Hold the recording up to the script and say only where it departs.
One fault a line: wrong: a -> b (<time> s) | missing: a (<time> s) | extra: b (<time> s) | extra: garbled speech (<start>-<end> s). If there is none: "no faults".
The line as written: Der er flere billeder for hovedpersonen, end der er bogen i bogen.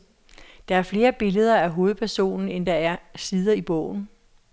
wrong: for -> af (1.6 s)
wrong: bogen -> sider (3.2 s)